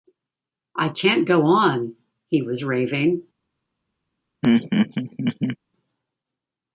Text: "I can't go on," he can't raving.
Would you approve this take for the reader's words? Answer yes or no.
no